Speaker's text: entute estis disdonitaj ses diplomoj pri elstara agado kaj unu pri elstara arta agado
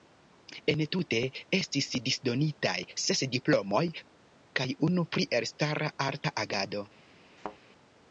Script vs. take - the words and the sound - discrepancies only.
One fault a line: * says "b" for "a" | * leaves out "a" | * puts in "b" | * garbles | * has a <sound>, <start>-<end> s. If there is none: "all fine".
* leaves out "pri elstara agado"
* has a thud, 7.4-7.6 s